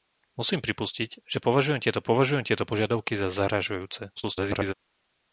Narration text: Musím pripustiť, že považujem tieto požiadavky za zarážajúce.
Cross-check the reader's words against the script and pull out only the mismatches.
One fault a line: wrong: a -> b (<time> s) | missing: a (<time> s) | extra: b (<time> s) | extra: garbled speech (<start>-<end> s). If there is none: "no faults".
extra: považujem tieto (2.0 s)
extra: garbled speech (4.2-4.7 s)